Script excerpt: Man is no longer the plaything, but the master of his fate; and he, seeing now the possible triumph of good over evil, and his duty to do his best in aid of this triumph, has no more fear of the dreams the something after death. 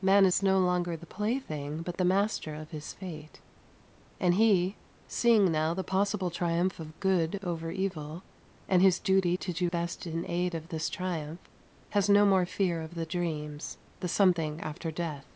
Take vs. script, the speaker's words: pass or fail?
fail